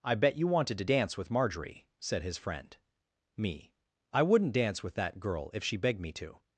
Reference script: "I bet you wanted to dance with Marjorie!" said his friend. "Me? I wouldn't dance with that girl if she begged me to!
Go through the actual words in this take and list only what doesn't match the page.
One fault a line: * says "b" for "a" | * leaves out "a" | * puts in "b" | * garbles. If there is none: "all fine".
all fine